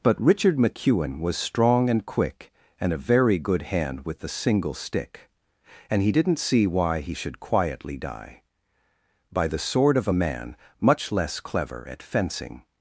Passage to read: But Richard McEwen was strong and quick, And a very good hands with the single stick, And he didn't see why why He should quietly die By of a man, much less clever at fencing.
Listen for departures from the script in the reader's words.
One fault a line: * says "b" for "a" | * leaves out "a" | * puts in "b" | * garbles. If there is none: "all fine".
* says "hand" for "hands"
* leaves out "why"
* puts in "the sword"